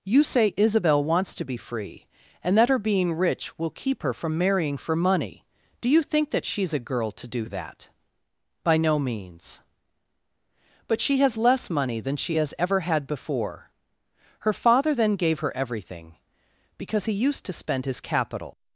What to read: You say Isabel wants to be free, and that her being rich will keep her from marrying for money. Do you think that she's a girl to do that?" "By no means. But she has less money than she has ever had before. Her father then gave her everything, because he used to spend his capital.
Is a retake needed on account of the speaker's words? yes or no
no